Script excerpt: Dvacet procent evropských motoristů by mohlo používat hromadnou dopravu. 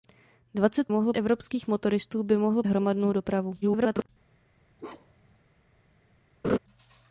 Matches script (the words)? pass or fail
fail